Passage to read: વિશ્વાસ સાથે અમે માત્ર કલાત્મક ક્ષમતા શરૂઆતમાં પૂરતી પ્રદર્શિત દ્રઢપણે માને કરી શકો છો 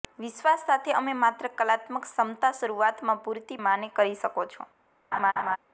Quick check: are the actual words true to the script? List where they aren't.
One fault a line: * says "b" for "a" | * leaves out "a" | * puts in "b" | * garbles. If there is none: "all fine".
* leaves out "પ્રદર્શિત દ્રઢપણે"